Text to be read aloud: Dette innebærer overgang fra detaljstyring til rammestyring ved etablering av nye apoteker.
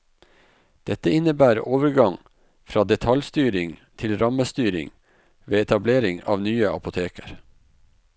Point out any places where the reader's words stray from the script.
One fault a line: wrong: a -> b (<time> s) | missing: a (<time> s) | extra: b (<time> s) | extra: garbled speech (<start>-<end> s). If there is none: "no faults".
no faults